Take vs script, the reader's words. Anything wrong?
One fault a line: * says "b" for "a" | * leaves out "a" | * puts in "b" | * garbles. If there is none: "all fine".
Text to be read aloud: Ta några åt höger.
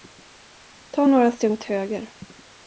* puts in "steg"